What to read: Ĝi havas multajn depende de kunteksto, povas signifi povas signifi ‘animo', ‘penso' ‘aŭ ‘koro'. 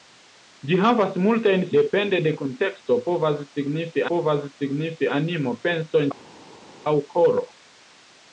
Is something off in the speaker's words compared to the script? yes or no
no